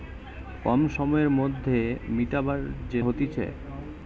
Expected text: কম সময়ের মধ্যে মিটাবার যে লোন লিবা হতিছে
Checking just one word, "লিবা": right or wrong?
wrong